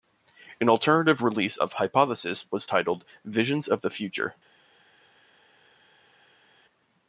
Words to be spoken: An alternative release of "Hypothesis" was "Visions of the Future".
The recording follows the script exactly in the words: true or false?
false